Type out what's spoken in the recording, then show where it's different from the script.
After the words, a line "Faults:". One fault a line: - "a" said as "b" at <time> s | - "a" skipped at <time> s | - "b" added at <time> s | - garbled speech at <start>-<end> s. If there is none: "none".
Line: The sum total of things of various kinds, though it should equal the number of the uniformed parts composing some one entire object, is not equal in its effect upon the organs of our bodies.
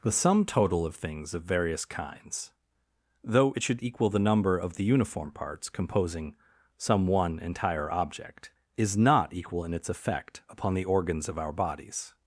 The sum total of things of various kinds, though it should equal the number of the uniform parts composing some one entire object, is not equal in its effect upon the organs of our bodies.
Faults:
- "uniformed" said as "uniform" at 4.8 s